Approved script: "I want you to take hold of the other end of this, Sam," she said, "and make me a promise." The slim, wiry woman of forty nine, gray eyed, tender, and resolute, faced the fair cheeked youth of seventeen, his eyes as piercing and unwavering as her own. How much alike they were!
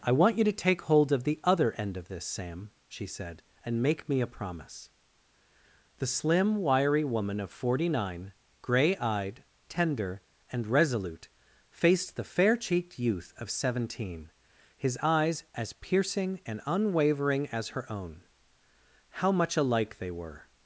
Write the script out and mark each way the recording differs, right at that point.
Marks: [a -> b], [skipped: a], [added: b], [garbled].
"I want you to take hold of the other end of this, Sam," she said, "and make me a promise." The slim, wiry woman of forty nine, gray eyed, tender, and resolute, faced the fair cheeked youth of seventeen, his eyes as piercing and unwavering as her own. How much alike they were!